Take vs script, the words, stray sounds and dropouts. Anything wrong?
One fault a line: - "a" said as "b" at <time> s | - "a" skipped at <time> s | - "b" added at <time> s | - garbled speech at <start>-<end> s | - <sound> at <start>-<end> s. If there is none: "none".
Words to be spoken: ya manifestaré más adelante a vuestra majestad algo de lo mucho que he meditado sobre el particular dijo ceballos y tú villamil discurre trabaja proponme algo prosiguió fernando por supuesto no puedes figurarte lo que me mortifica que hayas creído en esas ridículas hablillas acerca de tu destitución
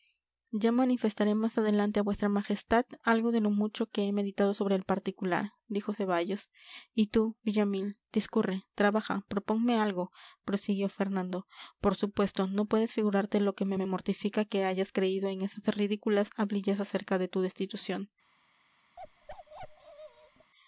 - "me" added at 13.7 s
- bark at 19.0-20.5 s